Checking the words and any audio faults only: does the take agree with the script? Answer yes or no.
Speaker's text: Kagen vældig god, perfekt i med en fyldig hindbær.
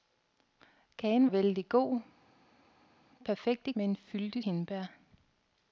yes